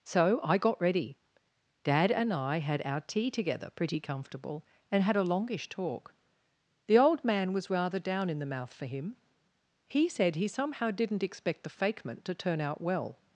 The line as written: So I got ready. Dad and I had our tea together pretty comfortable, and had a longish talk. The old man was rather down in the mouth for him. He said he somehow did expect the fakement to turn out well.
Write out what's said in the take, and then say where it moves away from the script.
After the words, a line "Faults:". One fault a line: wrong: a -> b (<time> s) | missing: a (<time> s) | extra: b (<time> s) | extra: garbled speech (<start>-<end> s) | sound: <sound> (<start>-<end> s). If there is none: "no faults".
So I got ready. Dad and I had our tea together pretty comfortable, and had a longish talk. The old man was rather down in the mouth for him. He said he somehow didn't expect the fakement to turn out well.
Faults:
wrong: did -> didn't (10.9 s)